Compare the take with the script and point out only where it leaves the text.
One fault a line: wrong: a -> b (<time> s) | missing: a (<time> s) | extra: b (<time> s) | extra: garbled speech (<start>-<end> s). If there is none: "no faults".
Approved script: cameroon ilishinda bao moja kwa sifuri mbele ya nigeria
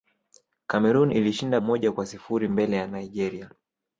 missing: bao (1.6 s)